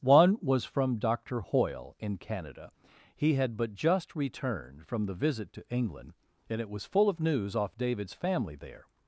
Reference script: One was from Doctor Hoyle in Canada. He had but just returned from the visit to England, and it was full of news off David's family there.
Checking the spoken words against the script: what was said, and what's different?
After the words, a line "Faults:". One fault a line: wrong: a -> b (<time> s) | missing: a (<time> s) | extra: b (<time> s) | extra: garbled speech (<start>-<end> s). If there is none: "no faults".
One was from Doctor Hoyle in Canada. He had but just returned from the visit to England, and it was full of news off David's family there.
Faults:
no faults